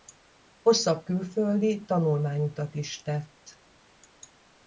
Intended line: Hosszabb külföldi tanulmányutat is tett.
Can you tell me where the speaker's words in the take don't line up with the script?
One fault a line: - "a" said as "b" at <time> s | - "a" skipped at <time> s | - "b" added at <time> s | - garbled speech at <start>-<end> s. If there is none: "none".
none